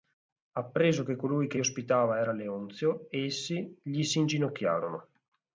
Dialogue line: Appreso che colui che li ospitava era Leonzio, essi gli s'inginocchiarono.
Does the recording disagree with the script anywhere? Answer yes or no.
yes